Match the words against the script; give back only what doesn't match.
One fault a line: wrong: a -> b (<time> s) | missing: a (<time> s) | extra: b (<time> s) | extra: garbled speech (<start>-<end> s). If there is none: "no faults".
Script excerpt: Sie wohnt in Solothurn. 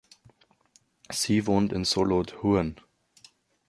no faults